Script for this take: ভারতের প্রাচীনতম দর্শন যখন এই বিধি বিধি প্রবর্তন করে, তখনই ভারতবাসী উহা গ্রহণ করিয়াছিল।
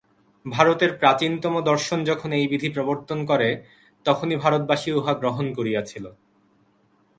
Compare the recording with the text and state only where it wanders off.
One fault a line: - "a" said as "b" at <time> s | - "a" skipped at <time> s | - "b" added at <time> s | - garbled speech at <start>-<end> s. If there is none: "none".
- "বিধি" skipped at 2.7 s